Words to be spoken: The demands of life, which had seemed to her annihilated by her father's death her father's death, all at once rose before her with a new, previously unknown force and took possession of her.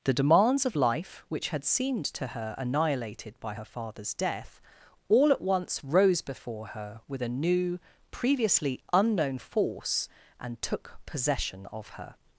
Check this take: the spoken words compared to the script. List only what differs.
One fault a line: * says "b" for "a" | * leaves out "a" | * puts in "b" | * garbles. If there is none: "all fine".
* leaves out "her father's death"